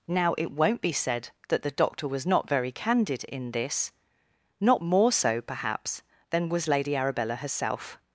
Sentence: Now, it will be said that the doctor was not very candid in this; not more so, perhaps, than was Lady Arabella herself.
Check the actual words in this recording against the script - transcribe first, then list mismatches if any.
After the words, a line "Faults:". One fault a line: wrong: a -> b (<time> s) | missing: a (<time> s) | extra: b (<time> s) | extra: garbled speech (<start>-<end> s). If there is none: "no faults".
Now, it won't be said that the doctor was not very candid in this; not more so, perhaps, than was Lady Arabella herself.
Faults:
wrong: will -> won't (0.5 s)